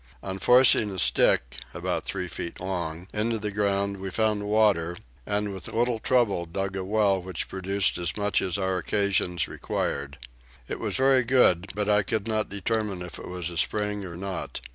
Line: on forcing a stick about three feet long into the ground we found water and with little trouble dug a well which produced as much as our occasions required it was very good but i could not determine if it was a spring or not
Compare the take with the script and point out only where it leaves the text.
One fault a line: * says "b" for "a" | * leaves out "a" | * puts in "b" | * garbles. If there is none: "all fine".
all fine